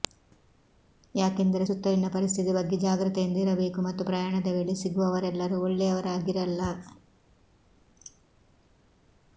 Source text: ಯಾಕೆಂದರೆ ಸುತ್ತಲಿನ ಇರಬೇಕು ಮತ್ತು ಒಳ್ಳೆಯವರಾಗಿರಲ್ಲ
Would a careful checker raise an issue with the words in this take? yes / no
yes